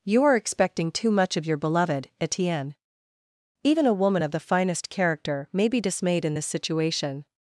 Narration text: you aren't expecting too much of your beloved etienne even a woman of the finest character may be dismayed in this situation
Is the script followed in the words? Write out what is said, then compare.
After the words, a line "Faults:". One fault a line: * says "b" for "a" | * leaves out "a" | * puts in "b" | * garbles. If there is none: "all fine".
you are expecting too much of your beloved etienne even a woman of the finest character may be dismayed in this situation
Faults:
* says "are" for "aren't"